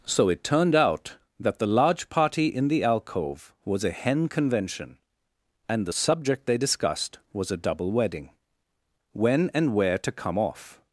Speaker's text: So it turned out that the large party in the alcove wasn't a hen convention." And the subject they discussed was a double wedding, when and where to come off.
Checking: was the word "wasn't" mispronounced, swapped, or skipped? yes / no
yes